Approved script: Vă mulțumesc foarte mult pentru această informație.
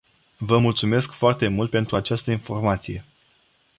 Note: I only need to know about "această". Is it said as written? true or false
true